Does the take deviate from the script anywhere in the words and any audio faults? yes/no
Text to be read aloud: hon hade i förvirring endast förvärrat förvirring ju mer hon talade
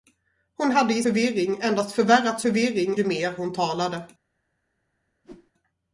yes